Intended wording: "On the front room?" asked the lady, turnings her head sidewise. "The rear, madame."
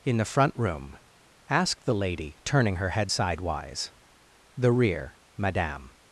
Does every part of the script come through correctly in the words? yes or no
no